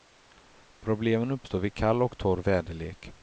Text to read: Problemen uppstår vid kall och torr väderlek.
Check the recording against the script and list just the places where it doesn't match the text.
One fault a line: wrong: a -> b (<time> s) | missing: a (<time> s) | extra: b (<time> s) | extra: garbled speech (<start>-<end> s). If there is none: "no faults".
no faults